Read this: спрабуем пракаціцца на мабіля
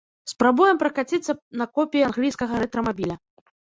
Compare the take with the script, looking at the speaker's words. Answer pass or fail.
fail